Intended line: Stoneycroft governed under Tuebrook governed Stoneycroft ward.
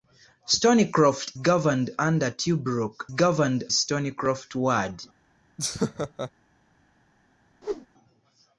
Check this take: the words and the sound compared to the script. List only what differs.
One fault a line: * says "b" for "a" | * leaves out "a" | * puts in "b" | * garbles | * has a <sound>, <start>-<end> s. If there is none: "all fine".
* has a laugh, 5.6-6.3 s
* has a whoosh, 7.6-7.9 s